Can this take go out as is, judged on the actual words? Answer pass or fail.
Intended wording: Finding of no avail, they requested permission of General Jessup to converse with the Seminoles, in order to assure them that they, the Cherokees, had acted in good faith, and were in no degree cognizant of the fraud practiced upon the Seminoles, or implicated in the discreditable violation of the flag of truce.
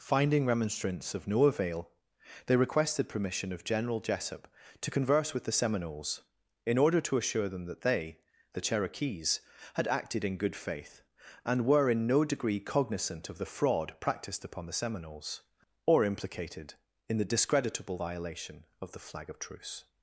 fail